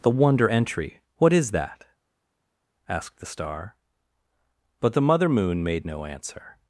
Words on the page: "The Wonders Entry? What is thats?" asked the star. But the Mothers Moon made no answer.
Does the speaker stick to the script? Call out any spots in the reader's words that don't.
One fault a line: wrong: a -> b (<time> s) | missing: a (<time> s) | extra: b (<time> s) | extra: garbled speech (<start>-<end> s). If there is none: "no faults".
wrong: Wonders -> Wonder (0.1 s)
wrong: thats -> that (1.5 s)
wrong: Mothers -> Mother (5.0 s)